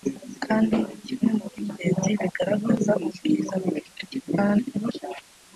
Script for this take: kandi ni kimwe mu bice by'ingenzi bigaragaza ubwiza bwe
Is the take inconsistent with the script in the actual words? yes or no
yes